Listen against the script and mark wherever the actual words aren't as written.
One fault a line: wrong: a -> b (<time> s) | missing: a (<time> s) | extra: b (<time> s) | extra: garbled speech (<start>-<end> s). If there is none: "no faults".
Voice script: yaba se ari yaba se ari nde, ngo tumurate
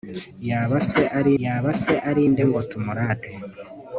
no faults